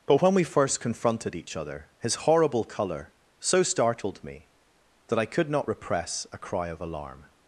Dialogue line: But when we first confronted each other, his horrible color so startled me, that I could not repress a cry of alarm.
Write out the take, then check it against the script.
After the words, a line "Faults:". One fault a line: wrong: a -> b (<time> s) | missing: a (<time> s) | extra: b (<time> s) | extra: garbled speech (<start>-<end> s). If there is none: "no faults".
But when we first confronted each other, his horrible color so startled me, that I could not repress a cry of alarm.
Faults:
no faults